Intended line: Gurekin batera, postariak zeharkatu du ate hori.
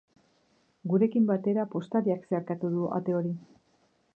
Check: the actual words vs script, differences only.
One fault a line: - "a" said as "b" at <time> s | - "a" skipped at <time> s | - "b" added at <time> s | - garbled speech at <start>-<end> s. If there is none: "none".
none